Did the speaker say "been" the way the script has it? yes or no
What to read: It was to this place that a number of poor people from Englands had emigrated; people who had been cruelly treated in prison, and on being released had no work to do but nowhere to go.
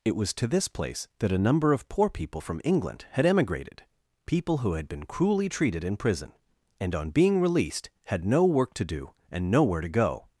yes